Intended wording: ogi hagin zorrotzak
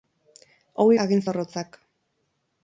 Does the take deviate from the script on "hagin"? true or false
false